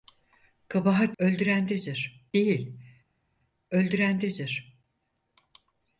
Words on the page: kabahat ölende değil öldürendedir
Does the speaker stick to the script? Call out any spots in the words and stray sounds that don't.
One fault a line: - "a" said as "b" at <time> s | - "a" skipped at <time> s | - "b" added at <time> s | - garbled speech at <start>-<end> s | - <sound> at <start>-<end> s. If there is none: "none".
- "ölende" said as "öldürendedir" at 1.2 s